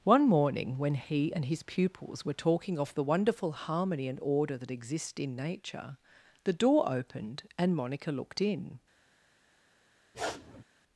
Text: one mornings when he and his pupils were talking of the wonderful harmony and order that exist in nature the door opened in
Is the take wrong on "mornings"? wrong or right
wrong